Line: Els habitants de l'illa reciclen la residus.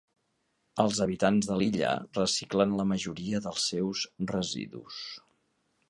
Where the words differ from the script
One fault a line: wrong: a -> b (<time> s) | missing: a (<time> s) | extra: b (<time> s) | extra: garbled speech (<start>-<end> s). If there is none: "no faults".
extra: majoria dels seus (2.9 s)